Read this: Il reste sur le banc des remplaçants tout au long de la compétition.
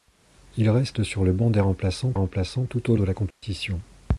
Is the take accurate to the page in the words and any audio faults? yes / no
no